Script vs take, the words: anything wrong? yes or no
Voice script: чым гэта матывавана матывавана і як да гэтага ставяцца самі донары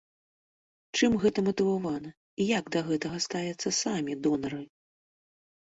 yes